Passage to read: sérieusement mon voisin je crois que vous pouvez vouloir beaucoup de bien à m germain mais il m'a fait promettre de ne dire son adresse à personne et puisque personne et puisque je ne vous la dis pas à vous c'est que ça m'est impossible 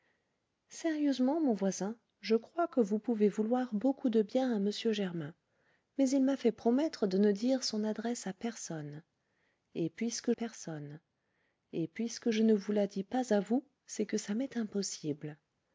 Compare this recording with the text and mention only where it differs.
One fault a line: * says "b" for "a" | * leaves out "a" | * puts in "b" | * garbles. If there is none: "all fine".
all fine